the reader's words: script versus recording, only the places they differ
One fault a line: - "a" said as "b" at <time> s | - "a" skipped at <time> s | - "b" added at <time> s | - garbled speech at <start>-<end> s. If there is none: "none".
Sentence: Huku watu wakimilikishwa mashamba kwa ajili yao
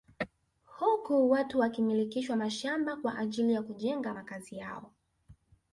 - "ya kujenga makazi" added at 3.5 s